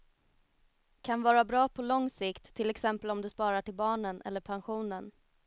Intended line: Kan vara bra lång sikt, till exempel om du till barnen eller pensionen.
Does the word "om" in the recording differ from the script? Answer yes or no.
no